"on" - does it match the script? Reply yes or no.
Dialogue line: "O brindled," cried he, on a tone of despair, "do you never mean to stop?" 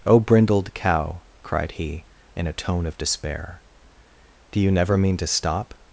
no